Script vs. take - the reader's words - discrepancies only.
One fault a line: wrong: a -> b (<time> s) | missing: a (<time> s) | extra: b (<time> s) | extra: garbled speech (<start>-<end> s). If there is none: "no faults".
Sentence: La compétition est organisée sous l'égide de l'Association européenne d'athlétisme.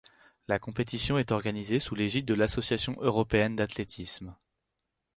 no faults